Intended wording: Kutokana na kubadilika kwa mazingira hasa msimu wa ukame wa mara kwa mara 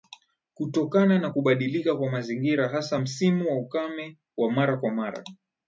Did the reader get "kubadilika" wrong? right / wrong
right